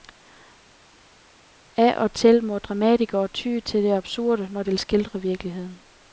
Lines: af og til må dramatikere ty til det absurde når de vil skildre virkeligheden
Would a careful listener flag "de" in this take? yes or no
yes